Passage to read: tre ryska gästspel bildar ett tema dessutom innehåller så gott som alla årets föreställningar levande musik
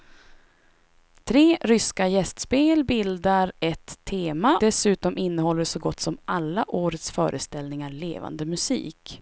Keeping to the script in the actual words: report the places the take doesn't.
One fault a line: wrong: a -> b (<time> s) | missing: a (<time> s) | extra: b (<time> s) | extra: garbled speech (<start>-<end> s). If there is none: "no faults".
no faults